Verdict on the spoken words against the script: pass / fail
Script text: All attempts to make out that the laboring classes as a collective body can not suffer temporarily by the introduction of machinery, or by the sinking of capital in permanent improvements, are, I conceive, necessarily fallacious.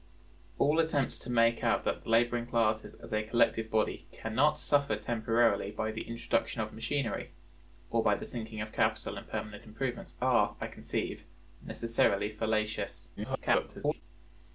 fail